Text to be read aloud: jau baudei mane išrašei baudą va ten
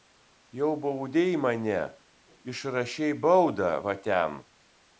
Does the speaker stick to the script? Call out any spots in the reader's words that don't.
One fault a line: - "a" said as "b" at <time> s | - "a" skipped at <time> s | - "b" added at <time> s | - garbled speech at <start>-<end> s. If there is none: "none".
none